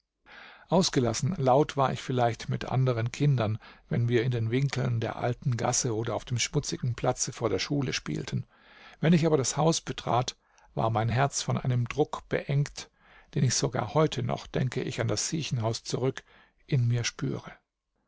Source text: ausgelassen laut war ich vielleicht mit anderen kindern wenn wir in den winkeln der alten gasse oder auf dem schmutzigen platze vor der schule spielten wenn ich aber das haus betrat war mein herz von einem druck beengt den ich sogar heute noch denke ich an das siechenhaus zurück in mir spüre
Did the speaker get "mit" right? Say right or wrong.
right